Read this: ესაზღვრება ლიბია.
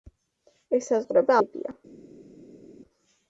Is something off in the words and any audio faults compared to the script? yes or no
no